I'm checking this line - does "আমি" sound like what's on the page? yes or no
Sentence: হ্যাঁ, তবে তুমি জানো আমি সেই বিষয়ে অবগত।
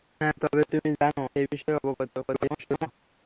no